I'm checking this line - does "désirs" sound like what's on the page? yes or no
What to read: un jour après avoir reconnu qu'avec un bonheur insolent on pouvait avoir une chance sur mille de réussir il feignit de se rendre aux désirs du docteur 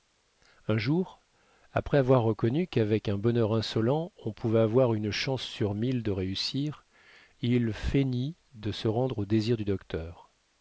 yes